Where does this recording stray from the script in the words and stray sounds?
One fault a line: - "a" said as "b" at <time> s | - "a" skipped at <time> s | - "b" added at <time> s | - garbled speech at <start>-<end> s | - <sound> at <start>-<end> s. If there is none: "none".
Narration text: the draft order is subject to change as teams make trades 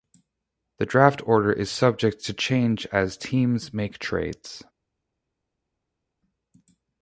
none